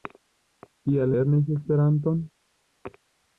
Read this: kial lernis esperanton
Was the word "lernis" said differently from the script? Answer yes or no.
no